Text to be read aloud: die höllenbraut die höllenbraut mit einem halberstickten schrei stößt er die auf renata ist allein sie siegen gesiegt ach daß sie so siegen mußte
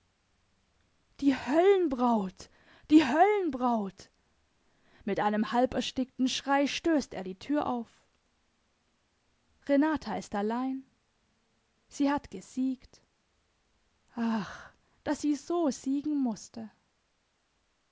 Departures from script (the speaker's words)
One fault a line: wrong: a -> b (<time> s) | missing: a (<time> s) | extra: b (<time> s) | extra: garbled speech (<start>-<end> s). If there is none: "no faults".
extra: tür (7.4 s)
wrong: siegen -> hat (12.1 s)